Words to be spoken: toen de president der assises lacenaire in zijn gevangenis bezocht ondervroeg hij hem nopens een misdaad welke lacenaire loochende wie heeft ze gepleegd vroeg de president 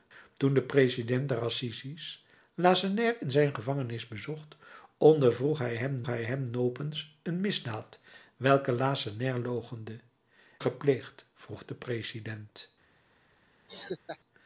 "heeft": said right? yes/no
no